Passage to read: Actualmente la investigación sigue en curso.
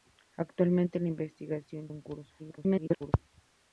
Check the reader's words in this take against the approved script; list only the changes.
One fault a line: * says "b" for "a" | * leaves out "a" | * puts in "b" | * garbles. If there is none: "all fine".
* leaves out "sigue"
* garbles